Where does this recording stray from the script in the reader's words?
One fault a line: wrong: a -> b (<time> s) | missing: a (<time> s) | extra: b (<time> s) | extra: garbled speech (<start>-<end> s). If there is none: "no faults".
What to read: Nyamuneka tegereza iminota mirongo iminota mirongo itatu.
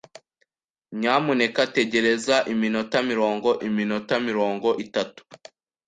no faults